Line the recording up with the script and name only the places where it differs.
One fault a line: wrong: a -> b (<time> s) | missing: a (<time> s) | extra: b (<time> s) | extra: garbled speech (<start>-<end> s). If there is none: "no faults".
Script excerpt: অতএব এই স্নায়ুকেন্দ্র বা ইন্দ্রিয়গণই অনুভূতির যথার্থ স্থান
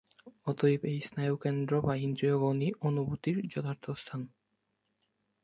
no faults